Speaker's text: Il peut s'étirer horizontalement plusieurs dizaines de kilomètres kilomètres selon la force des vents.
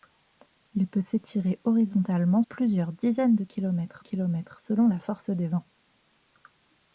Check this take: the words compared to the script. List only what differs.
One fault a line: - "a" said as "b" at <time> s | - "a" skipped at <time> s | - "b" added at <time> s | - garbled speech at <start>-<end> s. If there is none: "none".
none